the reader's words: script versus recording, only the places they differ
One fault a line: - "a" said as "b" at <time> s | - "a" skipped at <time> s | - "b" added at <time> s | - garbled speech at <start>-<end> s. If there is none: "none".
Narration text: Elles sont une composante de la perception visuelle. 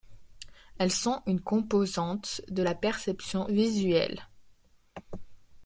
none